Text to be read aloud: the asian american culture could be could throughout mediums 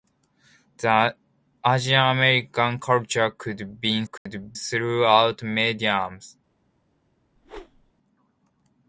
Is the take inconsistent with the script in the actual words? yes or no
no